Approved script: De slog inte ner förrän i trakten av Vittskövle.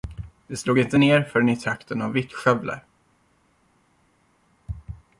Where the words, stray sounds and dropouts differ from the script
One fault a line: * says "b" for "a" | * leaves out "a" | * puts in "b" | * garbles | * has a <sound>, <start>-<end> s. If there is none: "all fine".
all fine